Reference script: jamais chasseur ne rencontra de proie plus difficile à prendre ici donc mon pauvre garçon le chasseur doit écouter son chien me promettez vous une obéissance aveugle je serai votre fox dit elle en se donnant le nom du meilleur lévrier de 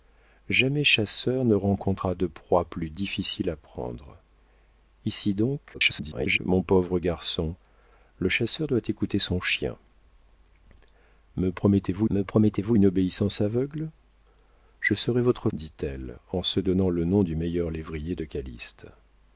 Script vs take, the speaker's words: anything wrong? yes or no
yes